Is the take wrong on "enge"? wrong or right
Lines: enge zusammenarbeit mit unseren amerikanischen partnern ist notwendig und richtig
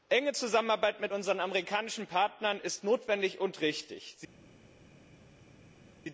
right